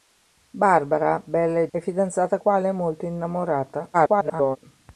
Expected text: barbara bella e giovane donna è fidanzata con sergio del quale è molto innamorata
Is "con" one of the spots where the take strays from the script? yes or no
yes